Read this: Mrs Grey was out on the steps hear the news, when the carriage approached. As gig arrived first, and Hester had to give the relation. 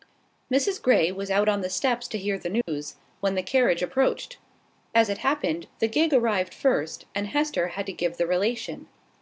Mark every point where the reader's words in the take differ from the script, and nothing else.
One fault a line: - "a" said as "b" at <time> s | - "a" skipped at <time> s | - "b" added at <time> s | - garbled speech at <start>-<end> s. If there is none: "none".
- "to" added at 2.1 s
- "it happened the" added at 5.1 s